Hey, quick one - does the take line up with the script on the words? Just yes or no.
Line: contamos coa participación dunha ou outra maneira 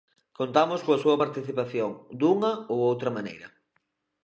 no